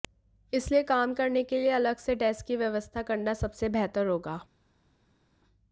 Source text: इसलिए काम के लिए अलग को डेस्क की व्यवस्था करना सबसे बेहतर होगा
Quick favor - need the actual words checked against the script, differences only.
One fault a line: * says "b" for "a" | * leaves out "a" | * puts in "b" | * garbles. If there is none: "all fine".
* puts in "करने"
* says "से" for "को"